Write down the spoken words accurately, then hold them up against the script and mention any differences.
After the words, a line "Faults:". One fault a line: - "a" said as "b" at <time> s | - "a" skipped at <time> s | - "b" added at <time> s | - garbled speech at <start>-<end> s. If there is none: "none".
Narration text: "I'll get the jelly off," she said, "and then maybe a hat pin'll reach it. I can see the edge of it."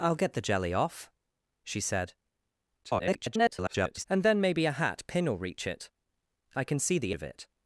"I'll get the jelly off," she said, [garbled] "and then maybe a hat pin'll reach it. I can see the of it."
Faults:
- garbled speech at 2.8-4.0 s
- "edge" skipped at 7.1 s